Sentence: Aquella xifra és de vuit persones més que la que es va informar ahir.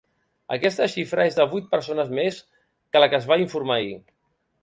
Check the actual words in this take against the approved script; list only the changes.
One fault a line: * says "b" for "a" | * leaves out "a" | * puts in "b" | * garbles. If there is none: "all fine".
* says "Aquesta" for "Aquella"